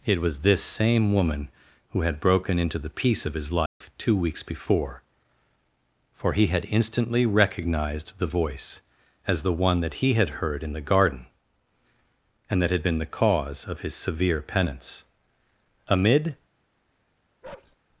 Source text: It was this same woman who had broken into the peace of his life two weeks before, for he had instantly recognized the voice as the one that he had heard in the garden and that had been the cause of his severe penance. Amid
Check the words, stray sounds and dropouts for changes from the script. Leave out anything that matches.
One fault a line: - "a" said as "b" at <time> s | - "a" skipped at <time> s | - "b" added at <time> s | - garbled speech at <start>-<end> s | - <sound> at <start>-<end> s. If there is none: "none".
- dropout at 3.7-3.8 s
- bark at 17.4-17.8 s